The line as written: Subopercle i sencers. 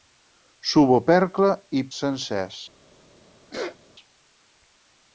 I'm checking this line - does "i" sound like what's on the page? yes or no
yes